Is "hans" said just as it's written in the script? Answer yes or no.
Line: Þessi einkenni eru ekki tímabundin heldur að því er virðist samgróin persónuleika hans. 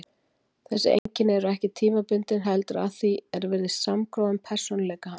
yes